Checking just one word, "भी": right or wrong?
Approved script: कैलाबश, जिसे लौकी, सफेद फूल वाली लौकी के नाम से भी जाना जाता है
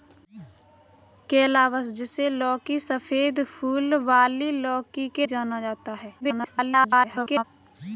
wrong